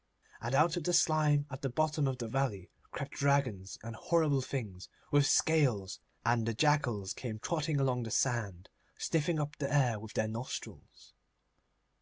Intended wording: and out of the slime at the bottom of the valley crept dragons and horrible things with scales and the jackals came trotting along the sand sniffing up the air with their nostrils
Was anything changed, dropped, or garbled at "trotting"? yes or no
no